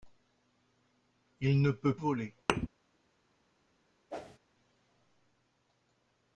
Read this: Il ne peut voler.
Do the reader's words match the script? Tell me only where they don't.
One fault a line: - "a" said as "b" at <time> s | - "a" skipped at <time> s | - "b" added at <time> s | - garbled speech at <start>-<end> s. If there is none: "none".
none